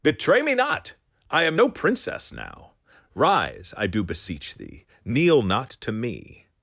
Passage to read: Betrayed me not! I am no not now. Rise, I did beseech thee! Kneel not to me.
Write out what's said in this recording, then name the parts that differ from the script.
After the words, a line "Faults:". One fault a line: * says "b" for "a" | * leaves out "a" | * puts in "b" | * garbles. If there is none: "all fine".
Betray me not! I am no princess now. Rise, I do beseech thee! Kneel not to me.
Faults:
* says "Betray" for "Betrayed"
* says "princess" for "not"
* says "do" for "did"